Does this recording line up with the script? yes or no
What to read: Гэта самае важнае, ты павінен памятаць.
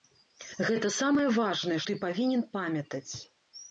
yes